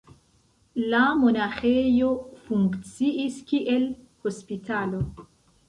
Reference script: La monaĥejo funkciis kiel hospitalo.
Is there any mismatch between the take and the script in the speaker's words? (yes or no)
no